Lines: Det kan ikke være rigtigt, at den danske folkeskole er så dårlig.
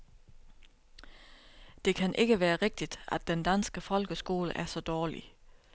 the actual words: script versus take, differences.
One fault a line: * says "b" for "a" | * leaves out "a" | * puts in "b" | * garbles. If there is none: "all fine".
all fine